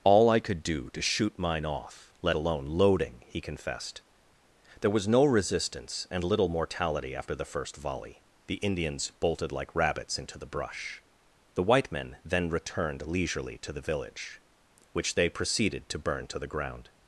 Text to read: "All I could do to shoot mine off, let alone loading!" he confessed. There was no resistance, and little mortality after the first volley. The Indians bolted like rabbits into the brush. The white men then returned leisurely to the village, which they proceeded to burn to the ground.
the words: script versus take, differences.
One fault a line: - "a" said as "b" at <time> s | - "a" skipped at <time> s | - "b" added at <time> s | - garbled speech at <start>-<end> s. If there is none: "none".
none